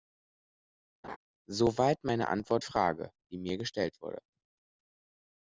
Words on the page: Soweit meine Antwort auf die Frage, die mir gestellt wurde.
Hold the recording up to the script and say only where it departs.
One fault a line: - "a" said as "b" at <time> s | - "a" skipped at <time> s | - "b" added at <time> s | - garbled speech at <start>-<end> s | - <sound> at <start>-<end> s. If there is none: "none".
- laugh at 1.0-1.2 s
- "auf die" skipped at 2.6 s